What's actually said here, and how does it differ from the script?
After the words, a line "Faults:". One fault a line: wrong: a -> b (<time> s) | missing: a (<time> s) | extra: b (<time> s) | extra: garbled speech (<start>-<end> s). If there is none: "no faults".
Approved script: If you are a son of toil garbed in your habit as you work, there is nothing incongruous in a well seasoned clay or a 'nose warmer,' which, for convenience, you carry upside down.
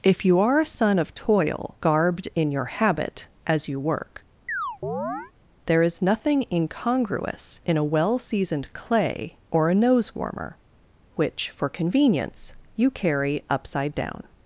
If you are a son of toil garbed in your habit as you work, there is nothing incongruous in a well seasoned clay or a 'nose warmer,' which, for convenience, you carry upside down.
Faults:
no faults